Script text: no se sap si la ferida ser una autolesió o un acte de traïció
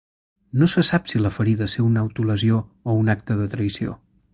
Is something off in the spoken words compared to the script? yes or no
no